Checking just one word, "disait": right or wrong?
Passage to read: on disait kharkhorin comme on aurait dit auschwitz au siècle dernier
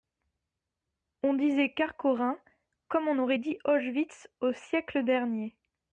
right